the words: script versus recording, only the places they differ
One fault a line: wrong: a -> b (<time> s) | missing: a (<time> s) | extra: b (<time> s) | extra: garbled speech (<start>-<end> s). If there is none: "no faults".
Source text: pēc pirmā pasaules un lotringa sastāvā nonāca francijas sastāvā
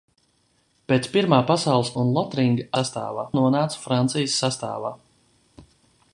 no faults